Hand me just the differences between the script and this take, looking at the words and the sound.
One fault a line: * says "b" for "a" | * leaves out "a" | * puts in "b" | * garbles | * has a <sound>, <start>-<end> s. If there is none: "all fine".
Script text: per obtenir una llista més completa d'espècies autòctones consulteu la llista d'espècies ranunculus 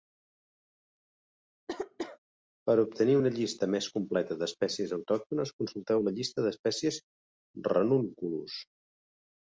* has a cough, 1.7-2.2 s